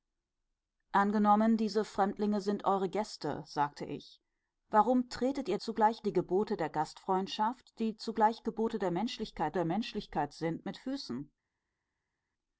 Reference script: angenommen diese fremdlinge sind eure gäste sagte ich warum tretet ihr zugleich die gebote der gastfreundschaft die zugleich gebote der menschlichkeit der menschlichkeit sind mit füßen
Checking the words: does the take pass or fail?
pass